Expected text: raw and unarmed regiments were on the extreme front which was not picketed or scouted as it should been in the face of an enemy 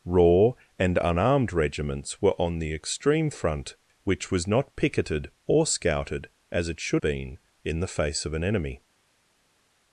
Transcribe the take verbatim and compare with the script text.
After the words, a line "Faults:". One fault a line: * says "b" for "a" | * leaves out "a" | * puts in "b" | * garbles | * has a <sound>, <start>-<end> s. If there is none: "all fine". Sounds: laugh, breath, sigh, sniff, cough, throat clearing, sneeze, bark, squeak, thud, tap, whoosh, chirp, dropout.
raw and unarmed regiments were on the extreme front which was not picketed or scouted as it should been in the face of an enemy
Faults:
all fine